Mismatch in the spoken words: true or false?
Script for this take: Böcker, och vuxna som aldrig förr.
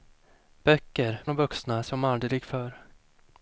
false